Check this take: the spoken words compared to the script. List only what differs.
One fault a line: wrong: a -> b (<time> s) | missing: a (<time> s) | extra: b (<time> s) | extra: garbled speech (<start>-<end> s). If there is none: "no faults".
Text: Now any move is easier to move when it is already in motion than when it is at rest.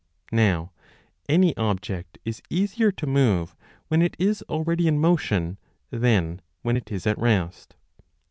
wrong: move -> object (1.6 s)